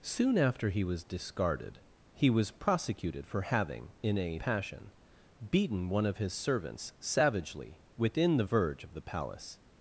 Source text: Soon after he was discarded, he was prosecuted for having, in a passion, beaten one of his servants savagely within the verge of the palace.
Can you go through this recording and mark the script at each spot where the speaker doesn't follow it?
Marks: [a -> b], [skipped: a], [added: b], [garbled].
Soon after he was discarded, he was prosecuted for having, in a passion, beaten one of his servants savagely within the verge of the palace.